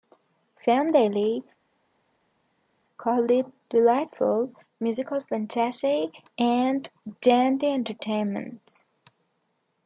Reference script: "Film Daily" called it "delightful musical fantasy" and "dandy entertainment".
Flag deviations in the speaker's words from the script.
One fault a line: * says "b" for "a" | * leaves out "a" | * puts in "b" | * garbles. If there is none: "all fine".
all fine